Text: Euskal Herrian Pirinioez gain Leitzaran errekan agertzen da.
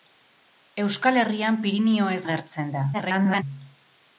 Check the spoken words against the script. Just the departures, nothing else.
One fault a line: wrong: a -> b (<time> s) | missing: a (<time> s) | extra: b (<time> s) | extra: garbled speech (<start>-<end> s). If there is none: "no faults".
missing: gain Leitzaran errekan (2.2 s)
extra: garbled speech (2.9-3.4 s)